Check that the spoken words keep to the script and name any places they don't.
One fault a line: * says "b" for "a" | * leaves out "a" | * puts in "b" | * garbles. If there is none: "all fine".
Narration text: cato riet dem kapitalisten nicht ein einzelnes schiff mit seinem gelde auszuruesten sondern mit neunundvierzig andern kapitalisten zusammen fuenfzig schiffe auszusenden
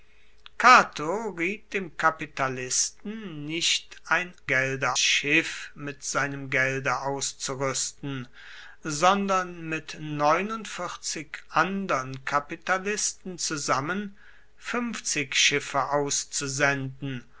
* says "gelde" for "einzelnes"